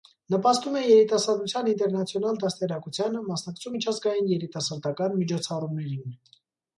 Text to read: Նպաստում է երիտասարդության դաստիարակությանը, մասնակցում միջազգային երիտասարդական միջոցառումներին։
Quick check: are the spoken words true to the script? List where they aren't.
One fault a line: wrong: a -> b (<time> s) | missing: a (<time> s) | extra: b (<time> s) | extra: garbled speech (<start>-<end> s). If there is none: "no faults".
extra: ինտերնացիոնալ (1.7 s)